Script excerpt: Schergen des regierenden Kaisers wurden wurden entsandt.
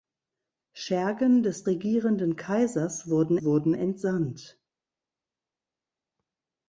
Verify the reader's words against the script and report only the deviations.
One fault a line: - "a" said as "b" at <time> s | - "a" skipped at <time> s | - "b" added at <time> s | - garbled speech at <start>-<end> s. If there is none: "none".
none